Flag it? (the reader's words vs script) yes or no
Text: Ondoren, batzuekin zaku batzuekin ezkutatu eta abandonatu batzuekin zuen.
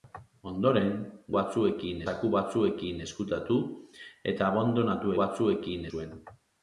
no